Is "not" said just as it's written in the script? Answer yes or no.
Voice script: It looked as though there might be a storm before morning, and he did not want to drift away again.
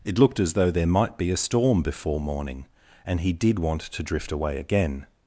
no